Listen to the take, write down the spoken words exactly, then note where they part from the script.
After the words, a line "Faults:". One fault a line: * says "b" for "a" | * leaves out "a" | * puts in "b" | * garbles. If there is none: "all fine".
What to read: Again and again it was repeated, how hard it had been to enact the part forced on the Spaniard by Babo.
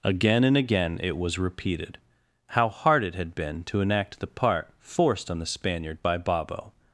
Again and again it was repeated, how hard it had been to enact the part forced on the Spaniard by Babo.
Faults:
all fine